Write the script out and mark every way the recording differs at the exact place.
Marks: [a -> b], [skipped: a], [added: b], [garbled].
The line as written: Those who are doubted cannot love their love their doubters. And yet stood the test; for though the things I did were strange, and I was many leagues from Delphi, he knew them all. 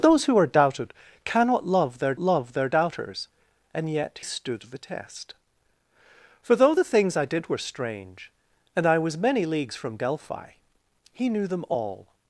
Those who are doubted cannot love their love their doubters. And yet stood the test; for though the things I did were strange, and I was many leagues from Delphi, he knew them all.